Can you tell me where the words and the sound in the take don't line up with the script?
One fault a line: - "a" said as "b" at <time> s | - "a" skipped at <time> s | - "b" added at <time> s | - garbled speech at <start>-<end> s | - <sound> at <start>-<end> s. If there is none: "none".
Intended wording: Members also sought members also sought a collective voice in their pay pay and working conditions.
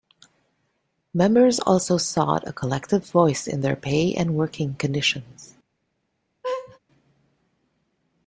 - "members also sought" skipped at 2.5 s
- "pay" skipped at 4.2 s
- laugh at 6.4-6.8 s